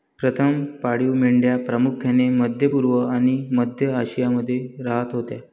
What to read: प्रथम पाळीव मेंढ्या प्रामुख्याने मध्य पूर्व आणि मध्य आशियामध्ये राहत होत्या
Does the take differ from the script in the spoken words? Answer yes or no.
no